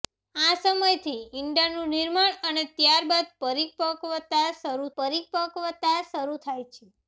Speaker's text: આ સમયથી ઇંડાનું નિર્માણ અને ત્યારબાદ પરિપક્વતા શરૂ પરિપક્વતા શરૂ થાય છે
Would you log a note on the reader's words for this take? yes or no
no